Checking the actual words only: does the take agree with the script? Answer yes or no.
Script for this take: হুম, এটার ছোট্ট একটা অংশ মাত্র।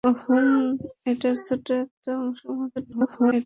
no